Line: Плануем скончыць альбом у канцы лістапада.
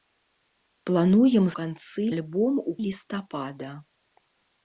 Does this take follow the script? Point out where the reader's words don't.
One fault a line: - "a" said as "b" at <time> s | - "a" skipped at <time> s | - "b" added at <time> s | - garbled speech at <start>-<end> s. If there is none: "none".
- "скончыць" said as "канцы" at 1.6 s
- "канцы" skipped at 2.7 s